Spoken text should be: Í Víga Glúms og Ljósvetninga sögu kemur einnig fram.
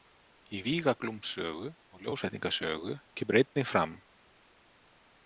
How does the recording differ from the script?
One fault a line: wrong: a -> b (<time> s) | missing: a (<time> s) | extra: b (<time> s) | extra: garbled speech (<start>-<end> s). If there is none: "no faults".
extra: sögu (1.4 s)